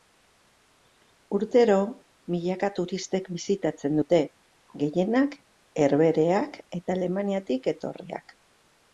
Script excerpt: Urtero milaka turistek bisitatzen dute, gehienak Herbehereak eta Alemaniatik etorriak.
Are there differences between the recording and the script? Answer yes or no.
no